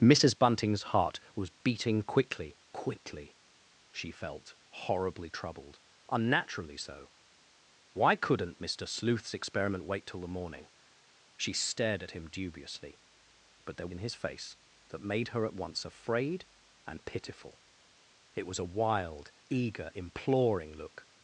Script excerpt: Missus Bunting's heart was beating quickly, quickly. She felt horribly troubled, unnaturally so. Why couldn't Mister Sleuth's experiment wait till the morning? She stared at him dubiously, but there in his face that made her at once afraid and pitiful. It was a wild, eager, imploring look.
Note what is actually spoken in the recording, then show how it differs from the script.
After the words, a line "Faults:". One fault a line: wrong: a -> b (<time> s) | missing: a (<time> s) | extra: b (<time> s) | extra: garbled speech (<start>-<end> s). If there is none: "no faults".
Missus Bunting's heart was beating quickly, quickly. She felt horribly troubled, unnaturally so. Why couldn't Mister Sleuth's experiment wait till the morning? She stared at him dubiously, but there in his face that made her at once afraid and pitiful. It was a wild, eager, imploring look.
Faults:
no faults